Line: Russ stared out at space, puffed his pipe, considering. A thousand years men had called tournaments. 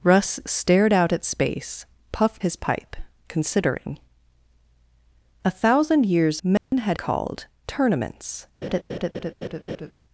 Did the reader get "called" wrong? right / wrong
right